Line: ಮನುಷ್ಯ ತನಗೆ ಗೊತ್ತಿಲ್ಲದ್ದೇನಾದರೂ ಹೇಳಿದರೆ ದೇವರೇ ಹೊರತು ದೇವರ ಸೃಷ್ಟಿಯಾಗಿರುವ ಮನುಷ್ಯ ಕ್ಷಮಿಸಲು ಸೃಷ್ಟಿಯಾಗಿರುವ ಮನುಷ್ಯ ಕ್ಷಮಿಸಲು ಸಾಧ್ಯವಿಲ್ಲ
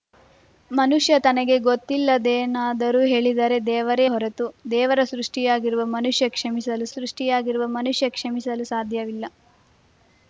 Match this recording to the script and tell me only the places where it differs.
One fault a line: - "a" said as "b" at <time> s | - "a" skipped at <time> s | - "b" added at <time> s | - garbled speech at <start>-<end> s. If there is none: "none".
none